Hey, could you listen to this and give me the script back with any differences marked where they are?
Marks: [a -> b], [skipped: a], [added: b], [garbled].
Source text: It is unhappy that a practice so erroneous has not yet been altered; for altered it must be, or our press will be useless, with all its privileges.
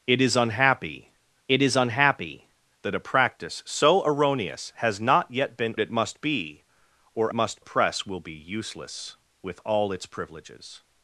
It is unhappy [added: it is unhappy] that a practice so erroneous has not yet been [skipped: altered; for altered] it must be, or [our -> must] press will be useless, with all its privileges.